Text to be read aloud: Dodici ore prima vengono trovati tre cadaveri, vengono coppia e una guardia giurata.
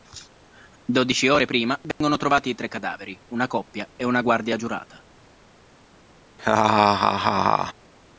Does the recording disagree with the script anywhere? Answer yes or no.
yes